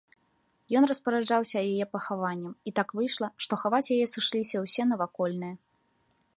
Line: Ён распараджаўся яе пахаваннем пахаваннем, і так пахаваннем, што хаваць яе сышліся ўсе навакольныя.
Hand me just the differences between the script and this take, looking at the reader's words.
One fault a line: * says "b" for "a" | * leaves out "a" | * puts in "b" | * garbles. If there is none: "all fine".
* leaves out "пахаваннем"
* says "выйшла" for "пахаваннем"